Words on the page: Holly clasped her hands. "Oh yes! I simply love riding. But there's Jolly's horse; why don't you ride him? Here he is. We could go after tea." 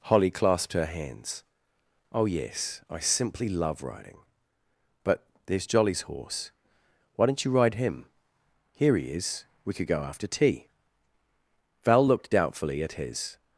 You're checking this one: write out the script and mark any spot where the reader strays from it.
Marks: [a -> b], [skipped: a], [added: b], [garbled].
Holly clasped her hands. "Oh yes! I simply love riding. But there's Jolly's horse; why don't you ride him? Here he is. We could go after tea." [added: Val looked doubtfully at his]